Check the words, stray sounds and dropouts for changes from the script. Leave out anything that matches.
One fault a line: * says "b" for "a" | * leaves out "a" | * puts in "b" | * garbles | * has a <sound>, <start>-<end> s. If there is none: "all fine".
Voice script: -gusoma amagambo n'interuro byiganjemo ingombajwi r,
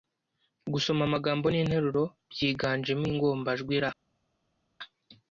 all fine